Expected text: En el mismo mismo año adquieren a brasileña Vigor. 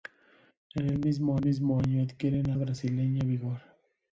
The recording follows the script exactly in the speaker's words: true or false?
true